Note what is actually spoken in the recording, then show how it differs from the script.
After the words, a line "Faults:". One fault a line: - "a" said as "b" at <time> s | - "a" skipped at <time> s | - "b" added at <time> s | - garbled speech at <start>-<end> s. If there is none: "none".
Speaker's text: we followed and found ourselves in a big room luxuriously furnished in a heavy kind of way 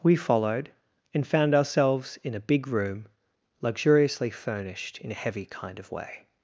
we followed and found ourselves in a big room luxuriously furnished in a heavy kind of way
Faults:
none